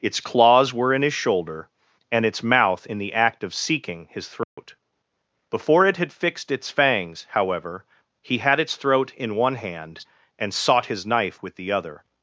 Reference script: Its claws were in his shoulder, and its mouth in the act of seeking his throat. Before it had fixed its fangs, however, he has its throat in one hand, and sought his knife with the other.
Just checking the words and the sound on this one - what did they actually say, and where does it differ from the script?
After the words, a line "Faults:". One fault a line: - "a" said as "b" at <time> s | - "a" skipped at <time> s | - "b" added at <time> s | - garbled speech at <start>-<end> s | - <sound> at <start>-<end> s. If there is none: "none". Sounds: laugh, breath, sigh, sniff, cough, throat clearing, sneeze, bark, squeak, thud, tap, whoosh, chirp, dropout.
Its claws were in his shoulder, and its mouth in the act of seeking his throat. Before it had fixed its fangs, however, he had its throat in one hand, and sought his knife with the other.
Faults:
- dropout at 4.4-4.6 s
- "has" said as "had" at 8.4 s